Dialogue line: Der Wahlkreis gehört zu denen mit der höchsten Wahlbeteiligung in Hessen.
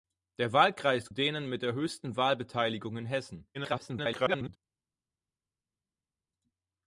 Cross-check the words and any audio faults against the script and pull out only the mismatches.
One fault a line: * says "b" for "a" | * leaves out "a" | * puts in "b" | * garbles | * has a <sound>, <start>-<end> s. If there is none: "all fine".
* leaves out "gehört zu"
* garbles